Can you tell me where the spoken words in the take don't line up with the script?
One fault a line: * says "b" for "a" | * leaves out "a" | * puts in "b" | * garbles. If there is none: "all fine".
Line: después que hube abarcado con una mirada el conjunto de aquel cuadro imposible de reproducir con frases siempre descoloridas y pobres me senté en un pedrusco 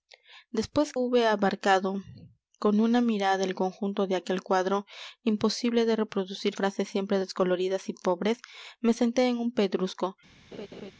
* leaves out "que"
* leaves out "con"